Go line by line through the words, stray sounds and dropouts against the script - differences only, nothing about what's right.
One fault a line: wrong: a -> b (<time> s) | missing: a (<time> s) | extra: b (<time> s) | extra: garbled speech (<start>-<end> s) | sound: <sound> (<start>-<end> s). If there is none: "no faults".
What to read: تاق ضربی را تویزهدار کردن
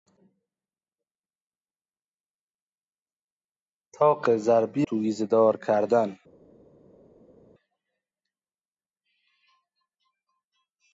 missing: را (4.9 s)